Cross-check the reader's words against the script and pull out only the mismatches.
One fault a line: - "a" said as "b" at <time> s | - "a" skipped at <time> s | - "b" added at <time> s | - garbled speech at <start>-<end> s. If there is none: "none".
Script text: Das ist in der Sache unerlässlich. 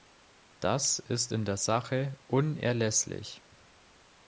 none